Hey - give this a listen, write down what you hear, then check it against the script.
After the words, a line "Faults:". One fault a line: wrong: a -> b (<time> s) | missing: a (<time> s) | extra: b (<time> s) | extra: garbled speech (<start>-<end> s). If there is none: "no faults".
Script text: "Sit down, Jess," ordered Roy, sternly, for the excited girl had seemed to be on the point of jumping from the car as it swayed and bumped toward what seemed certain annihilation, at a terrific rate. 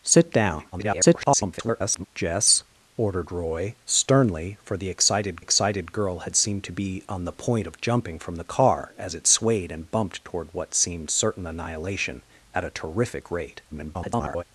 "Sit down, [garbled] Jess," ordered Roy, sternly, for the excited excited girl had seemed to be on the point of jumping from the car as it swayed and bumped toward what seemed certain annihilation, at a terrific rate. [garbled]
Faults:
extra: garbled speech (0.7-2.1 s)
extra: excited (5.4 s)
extra: garbled speech (13.7-14.4 s)